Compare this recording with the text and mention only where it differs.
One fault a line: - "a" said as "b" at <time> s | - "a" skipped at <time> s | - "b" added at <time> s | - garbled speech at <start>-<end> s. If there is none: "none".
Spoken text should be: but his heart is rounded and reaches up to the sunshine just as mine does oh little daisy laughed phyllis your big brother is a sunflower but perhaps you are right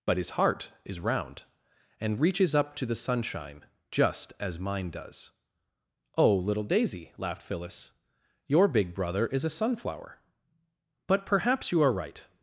- "rounded" said as "round" at 1.0 s